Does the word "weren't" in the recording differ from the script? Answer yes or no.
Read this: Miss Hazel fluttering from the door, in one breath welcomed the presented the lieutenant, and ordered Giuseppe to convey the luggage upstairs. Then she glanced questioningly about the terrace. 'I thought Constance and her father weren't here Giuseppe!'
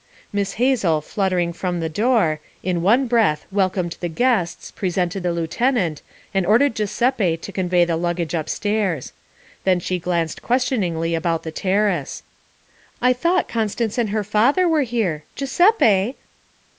yes